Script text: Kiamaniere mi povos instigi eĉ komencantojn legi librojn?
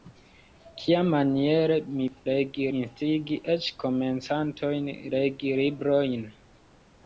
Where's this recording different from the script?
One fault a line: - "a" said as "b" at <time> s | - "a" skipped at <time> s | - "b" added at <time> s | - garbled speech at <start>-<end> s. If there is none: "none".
- "povos" said as "legi" at 2.3 s